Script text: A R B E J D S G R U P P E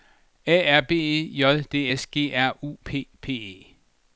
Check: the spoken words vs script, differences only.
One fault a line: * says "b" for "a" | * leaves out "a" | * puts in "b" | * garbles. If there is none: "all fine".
all fine